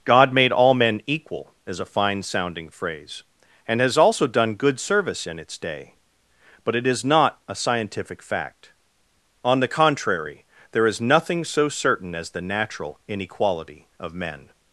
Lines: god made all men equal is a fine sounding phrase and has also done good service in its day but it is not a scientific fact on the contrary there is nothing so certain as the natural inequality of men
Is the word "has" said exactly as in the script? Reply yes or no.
yes